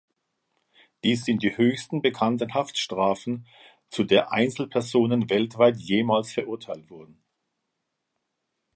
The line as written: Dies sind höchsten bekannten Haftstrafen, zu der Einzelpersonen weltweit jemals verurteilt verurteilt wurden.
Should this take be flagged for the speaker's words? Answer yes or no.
yes